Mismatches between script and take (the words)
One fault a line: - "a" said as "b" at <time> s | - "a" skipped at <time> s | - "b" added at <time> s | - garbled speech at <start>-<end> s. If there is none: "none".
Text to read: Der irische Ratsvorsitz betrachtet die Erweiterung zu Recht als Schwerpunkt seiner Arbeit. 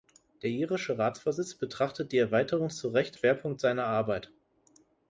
- "als" skipped at 3.2 s